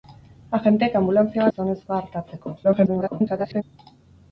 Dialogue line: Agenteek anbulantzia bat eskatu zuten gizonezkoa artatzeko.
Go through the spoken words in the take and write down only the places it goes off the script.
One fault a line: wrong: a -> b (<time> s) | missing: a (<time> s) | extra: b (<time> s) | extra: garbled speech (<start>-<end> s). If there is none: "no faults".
missing: bat eskatu zuten (1.4 s)
extra: garbled speech (2.6-3.6 s)